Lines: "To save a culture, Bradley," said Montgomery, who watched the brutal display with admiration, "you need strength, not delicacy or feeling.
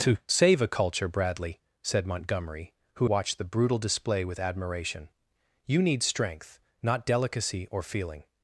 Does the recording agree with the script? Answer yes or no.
yes